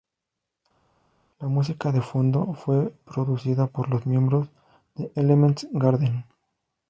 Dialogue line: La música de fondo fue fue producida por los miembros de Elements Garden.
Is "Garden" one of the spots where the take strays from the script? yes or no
no